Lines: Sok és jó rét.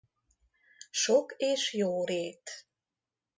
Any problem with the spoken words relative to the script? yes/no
no